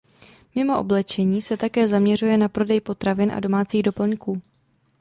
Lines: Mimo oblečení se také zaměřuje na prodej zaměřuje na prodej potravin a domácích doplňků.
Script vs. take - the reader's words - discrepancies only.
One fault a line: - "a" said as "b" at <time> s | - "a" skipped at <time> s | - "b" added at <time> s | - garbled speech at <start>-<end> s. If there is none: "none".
- "zaměřuje na prodej" skipped at 2.8 s